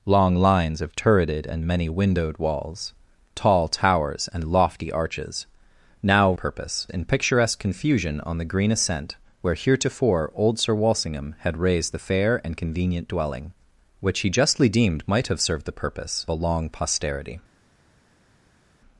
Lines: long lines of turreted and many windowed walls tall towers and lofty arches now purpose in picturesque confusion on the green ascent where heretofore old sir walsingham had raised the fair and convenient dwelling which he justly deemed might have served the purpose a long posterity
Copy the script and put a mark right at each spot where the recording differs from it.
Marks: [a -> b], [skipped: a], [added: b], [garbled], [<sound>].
long lines of turreted and many windowed walls tall towers and lofty arches now purpose in picturesque confusion on the green ascent where heretofore old sir walsingham had raised the fair and convenient dwelling which he justly deemed might have served the purpose a long posterity